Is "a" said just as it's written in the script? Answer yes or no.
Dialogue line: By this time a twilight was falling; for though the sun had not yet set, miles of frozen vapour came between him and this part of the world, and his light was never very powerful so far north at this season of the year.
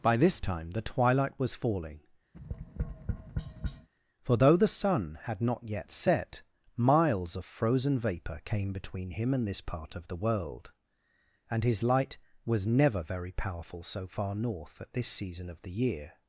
no